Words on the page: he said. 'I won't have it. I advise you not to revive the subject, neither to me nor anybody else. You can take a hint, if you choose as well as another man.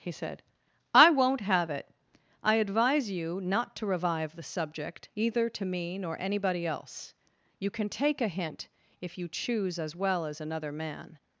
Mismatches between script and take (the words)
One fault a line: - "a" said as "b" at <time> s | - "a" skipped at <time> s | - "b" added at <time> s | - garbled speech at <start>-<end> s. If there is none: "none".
- "neither" said as "either" at 5.2 s